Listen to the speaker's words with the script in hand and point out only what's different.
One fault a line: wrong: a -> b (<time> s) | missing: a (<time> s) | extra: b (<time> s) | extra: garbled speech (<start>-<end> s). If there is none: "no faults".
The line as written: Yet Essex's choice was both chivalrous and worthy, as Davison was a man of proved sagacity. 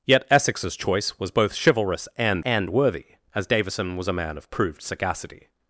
extra: and (2.4 s)